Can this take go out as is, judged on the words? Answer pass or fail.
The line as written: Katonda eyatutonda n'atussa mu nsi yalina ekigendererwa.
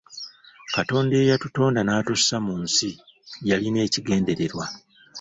pass